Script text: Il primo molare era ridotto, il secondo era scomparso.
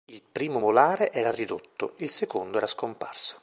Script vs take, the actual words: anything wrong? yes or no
no